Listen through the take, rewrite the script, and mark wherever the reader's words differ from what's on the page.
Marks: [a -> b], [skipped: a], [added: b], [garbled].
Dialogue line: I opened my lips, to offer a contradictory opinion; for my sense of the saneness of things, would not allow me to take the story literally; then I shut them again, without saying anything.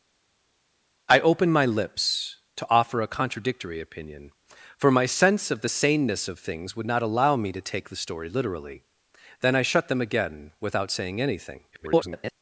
I opened my lips, to offer a contradictory opinion; for my sense of the saneness of things, would not allow me to take the story literally; then I shut them again, without saying anything. [garbled]